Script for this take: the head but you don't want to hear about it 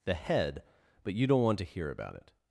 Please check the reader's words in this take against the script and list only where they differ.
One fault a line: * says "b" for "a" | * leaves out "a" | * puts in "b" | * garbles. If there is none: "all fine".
all fine